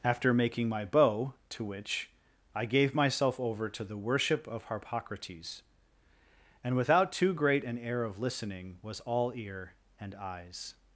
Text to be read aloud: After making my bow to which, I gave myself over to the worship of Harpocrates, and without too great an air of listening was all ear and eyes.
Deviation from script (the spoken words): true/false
false